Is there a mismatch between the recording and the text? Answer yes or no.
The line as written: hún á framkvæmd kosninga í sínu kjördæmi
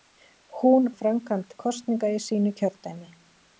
no